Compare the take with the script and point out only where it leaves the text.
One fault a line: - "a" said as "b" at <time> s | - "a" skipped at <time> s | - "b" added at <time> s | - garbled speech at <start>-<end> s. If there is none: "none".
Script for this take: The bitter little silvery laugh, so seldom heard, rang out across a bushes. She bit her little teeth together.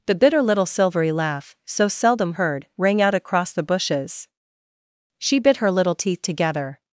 - "a" said as "the" at 3.5 s